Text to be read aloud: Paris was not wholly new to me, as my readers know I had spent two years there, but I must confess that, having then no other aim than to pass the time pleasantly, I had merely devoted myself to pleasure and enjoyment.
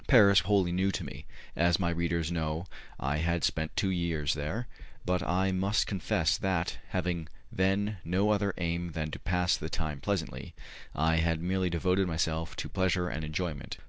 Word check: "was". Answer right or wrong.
wrong